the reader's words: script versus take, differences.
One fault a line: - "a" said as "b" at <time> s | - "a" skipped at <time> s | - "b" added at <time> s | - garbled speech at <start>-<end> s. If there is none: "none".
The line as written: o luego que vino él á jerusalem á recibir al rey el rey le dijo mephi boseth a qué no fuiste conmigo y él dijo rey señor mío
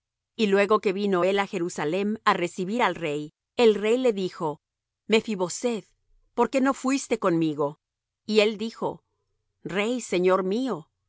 - "o" said as "y" at 0.3 s
- "a" said as "por" at 6.3 s